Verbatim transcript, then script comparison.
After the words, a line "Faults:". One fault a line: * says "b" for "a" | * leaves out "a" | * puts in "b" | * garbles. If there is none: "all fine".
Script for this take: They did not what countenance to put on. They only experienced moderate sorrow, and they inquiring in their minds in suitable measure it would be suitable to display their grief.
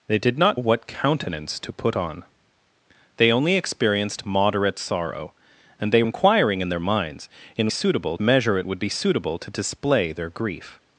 They did not what countenance to put on. They only experienced moderate sorrow, and they inquiring in their minds in suitable measure it would be suitable to display their grief.
Faults:
all fine